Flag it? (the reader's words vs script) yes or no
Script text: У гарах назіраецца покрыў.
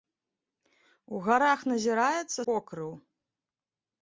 no